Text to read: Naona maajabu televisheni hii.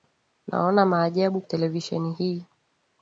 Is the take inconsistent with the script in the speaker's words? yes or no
no